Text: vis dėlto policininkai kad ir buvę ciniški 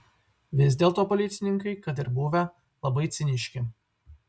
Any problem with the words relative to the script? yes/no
yes